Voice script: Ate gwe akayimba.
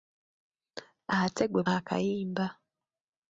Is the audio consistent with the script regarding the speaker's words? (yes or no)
yes